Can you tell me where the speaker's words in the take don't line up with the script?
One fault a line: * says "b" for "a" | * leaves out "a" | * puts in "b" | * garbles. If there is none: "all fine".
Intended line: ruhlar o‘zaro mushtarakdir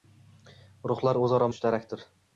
all fine